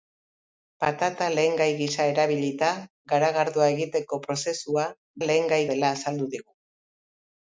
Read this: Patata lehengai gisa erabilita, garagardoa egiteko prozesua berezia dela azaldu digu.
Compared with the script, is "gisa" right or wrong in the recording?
right